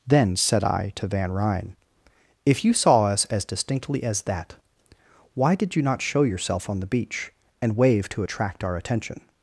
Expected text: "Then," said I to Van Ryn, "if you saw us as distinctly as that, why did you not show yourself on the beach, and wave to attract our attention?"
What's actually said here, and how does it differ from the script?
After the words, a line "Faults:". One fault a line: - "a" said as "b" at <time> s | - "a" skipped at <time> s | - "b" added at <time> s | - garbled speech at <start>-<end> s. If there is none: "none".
"Then," said I to Van Ryn, "if you saw us as distinctly as that, why did you not show yourself on the beach, and wave to attract our attention?"
Faults:
none